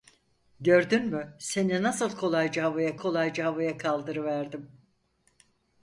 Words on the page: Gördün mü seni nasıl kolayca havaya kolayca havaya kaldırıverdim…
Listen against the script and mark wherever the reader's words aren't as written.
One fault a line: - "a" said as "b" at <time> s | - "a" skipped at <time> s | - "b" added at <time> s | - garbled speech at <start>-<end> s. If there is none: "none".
none